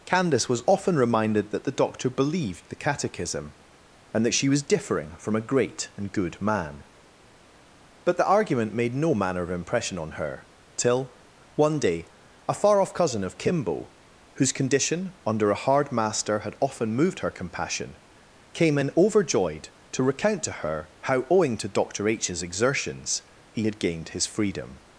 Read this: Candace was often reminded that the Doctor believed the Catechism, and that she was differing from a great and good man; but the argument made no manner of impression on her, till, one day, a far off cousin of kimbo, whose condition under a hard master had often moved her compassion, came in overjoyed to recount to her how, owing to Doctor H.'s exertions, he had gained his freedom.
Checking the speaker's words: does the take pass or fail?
pass